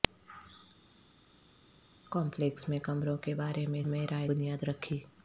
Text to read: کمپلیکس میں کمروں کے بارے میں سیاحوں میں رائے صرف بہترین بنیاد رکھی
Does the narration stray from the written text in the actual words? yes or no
yes